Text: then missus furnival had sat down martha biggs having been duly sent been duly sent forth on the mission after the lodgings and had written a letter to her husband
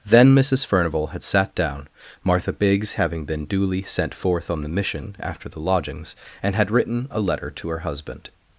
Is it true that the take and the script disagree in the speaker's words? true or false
true